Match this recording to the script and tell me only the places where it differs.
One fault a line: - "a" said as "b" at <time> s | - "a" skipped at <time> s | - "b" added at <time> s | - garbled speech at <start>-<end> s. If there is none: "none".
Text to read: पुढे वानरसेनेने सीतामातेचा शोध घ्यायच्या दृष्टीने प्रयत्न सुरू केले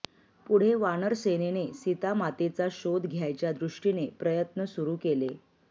none